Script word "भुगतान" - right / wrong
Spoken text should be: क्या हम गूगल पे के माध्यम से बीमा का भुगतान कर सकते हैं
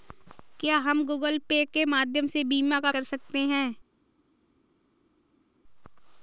wrong